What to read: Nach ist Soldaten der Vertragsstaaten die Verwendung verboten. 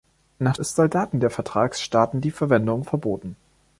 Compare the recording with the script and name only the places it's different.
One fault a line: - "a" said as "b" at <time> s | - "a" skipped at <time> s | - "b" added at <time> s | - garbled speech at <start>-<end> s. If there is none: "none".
none